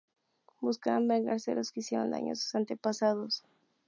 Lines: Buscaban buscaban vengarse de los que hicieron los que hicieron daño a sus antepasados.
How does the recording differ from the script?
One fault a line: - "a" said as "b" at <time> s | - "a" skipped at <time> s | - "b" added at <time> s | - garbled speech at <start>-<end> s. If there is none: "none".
- "buscaban" skipped at 1.1 s
- "los que hicieron" skipped at 2.1 s